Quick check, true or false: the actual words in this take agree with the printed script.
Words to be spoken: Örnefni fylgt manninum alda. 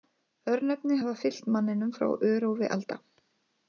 false